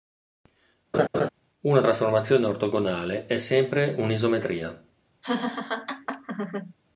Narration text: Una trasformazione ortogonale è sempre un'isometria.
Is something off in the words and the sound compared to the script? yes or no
yes